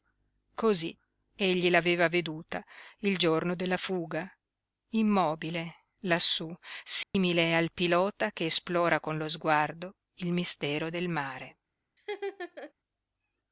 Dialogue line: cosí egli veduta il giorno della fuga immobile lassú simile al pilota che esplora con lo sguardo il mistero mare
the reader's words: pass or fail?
fail